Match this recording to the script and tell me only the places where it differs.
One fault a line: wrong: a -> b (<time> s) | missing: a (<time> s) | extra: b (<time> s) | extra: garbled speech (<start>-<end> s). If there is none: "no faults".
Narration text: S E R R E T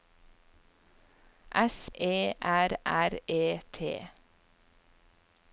no faults